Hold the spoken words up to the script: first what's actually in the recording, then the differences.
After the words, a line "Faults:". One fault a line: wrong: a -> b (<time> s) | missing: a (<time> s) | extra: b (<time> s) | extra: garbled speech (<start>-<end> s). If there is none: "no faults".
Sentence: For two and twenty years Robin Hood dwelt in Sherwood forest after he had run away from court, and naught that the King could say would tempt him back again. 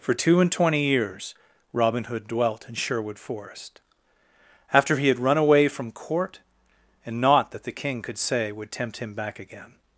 For two and twenty years Robin Hood dwelt in Sherwood forest after he had run away from court, and naught that the King could say would tempt him back again.
Faults:
no faults